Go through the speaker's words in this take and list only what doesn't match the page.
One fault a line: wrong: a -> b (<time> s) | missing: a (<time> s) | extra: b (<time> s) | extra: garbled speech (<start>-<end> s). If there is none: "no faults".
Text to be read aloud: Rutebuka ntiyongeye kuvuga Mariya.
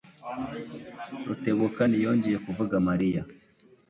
no faults